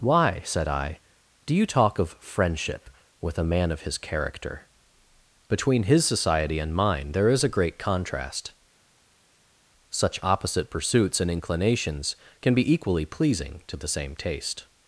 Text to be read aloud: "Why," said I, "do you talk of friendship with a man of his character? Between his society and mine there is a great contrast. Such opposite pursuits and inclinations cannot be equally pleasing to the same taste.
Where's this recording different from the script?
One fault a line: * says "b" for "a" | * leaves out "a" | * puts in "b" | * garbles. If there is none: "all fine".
* says "can" for "cannot"